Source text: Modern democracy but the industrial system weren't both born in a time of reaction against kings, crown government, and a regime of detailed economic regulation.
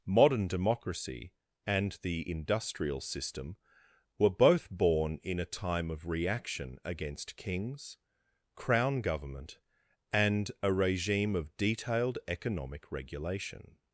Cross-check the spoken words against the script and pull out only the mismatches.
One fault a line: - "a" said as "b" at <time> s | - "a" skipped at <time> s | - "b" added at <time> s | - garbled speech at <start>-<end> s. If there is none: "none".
- "but" said as "and" at 1.6 s
- "weren't" said as "were" at 4.2 s